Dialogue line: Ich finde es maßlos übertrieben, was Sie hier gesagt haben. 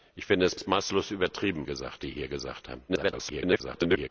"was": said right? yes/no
no